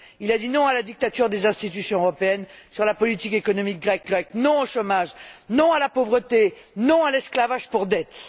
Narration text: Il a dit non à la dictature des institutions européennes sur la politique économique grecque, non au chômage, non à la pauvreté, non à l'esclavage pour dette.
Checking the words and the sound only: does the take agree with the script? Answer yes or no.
no